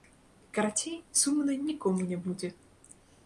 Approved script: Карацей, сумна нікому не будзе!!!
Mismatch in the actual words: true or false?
false